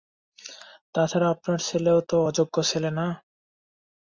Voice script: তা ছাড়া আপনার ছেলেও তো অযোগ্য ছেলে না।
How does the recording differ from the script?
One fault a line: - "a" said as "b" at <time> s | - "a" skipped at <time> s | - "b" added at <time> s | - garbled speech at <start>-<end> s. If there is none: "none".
none